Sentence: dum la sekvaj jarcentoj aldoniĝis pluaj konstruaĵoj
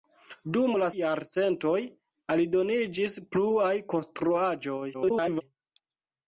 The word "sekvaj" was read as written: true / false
false